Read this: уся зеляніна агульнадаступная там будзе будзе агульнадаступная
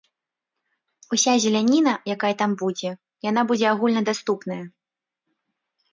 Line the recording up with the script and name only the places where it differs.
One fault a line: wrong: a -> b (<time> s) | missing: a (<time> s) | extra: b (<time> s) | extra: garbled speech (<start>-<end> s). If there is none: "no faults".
wrong: агульнадаступная -> якая (2.1 s)
extra: яна (3.3 s)